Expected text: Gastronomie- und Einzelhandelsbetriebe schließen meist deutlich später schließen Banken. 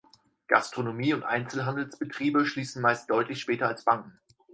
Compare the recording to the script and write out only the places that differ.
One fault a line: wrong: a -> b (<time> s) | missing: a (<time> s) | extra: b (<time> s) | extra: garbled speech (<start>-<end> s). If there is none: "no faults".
wrong: schließen -> als (3.7 s)